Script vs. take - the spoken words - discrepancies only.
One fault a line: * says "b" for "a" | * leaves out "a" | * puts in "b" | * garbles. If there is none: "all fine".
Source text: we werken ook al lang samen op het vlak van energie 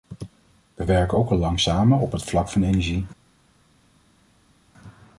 all fine